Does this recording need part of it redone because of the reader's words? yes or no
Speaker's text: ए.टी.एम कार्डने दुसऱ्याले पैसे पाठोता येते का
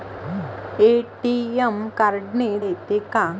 yes